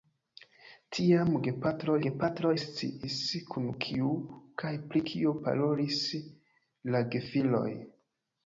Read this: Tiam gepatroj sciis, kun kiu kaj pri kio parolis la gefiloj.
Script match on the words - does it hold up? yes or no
no